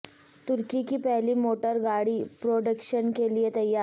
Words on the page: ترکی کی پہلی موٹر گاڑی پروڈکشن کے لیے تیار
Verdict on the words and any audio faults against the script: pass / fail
pass